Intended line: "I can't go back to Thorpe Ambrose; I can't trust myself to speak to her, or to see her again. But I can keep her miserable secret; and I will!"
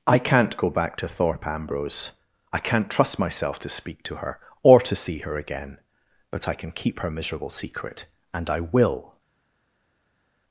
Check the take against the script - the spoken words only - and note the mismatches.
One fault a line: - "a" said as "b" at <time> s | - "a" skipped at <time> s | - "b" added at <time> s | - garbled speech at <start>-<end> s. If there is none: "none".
none